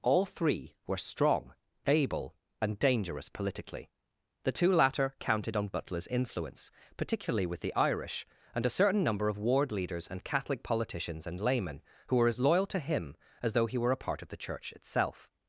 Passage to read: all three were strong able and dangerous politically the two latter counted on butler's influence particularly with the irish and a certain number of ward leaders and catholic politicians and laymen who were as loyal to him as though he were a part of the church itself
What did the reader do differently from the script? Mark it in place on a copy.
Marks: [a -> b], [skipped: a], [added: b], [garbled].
all three were strong able and dangerous politically the two latter counted on butler's influence particularly with the irish and a certain number of ward leaders and catholic politicians and laymen who were as loyal to him as though he were a part of the church itself